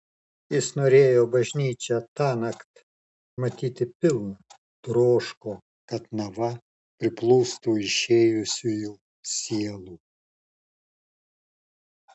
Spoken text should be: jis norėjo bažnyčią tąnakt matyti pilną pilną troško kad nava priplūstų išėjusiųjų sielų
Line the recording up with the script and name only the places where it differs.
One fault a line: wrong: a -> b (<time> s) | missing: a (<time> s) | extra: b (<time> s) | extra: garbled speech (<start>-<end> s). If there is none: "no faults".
missing: pilną (4.6 s)